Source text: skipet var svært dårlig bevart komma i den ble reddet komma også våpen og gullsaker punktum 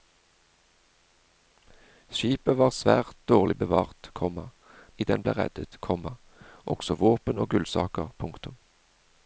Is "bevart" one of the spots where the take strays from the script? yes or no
no